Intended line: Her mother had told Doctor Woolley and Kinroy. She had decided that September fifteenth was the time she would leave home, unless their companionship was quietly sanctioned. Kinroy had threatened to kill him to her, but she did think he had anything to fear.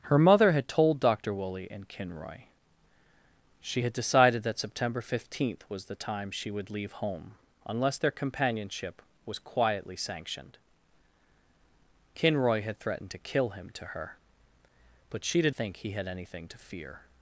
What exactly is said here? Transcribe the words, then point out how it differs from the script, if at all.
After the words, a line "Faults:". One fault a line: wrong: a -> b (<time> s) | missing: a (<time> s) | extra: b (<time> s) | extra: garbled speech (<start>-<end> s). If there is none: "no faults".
Her mother had told Doctor Woolley and Kinroy. She had decided that September fifteenth was the time she would leave home, unless their companionship was quietly sanctioned. Kinroy had threatened to kill him to her, but she did think he had anything to fear.
Faults:
no faults